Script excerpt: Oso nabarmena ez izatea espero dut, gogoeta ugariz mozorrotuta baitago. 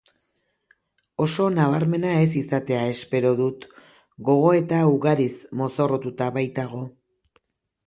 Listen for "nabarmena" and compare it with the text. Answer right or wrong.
right